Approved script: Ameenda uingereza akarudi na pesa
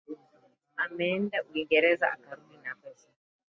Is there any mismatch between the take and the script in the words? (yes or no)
no